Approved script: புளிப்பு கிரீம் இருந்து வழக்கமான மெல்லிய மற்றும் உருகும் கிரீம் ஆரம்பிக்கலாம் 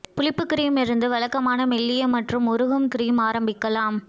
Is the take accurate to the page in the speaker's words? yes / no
yes